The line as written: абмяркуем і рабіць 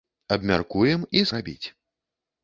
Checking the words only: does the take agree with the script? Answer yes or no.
yes